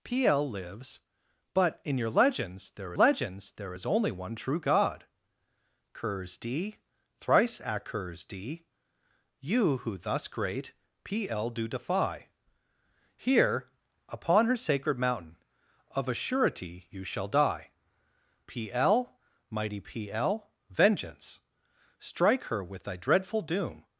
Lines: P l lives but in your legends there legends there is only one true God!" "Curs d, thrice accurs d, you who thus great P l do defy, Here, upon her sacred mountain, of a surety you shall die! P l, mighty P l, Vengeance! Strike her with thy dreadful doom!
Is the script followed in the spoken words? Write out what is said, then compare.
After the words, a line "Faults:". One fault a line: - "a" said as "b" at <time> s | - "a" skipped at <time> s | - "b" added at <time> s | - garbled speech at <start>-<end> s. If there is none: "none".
P l lives but in your legends there legends there is only one true God!" "Curs d, thrice accurs d, you who thus great P l do defy, Here, upon her sacred mountain, of a surety you shall die! P l, mighty P l, Vengeance! Strike her with thy dreadful doom!
Faults:
none